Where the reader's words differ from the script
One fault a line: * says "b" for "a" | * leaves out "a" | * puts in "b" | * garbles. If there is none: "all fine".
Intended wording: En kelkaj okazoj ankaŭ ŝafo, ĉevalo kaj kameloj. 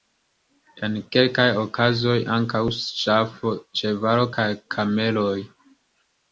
all fine